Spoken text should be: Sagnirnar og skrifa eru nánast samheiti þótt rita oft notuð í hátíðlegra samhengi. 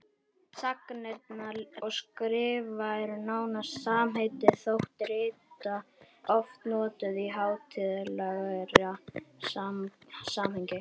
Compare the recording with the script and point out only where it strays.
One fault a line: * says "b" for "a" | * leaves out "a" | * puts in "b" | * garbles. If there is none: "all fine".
all fine